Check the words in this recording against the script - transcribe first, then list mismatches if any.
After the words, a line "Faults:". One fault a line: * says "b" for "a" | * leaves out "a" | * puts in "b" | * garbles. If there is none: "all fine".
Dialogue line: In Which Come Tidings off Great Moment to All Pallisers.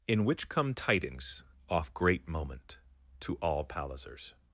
In Which Come Tidings off Great Moment to All Pallisers.
Faults:
all fine